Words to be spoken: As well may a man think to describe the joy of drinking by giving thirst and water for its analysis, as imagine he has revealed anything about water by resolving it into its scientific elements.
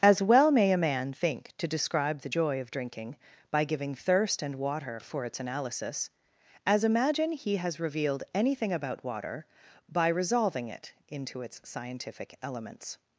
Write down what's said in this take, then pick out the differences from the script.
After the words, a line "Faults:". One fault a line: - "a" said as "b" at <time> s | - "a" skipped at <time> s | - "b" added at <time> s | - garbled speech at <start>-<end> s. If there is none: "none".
As well may a man think to describe the joy of drinking by giving thirst and water for its analysis, as imagine he has revealed anything about water by resolving it into its scientific elements.
Faults:
none